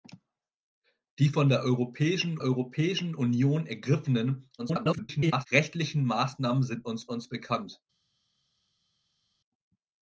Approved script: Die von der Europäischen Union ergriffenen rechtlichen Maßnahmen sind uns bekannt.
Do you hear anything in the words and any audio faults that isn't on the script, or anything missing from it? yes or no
yes